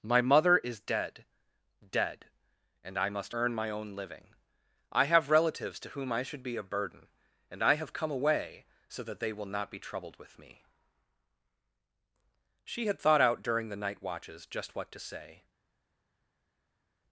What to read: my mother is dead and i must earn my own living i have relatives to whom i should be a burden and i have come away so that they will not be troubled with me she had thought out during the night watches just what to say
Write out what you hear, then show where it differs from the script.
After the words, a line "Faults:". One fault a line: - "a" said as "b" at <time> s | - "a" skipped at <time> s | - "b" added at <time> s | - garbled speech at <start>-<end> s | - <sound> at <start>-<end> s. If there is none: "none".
my mother is dead dead and i must earn my own living i have relatives to whom i should be a burden and i have come away so that they will not be troubled with me she had thought out during the night watches just what to say
Faults:
- "dead" added at 1.9 s